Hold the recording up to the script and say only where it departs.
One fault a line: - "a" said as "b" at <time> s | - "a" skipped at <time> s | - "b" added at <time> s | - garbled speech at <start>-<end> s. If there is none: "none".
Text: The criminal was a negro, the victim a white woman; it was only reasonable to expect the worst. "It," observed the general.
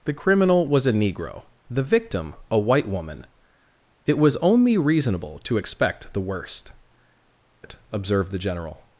none